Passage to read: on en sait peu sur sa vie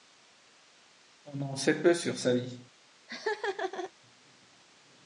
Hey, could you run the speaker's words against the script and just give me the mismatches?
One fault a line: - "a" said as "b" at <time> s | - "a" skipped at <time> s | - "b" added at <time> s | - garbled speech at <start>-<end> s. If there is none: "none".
none